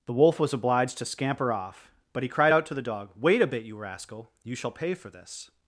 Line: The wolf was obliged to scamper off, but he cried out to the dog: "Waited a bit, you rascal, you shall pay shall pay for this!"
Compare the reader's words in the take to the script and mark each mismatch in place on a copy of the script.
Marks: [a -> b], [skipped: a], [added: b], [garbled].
The wolf was obliged to scamper off, but he cried out to the dog: ["Waited -> Wait] a bit, you rascal, you shall pay [skipped: shall pay] for this!"